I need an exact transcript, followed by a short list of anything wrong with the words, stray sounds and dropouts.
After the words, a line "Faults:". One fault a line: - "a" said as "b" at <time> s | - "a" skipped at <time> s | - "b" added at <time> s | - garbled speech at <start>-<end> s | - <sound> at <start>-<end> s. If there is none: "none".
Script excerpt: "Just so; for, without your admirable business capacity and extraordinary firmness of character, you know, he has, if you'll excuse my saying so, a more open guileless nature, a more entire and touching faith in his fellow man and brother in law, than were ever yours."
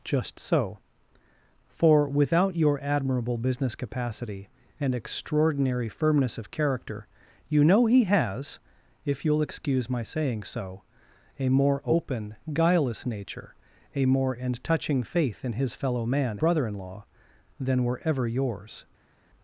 "Just so; for, without your admirable business capacity and extraordinary firmness of character, you know, he has, if you'll excuse my saying so, a more open guileless nature, a more and touching faith in his fellow man brother in law, than were ever yours."
Faults:
- "entire" skipped at 14.3 s
- "and" skipped at 16.4 s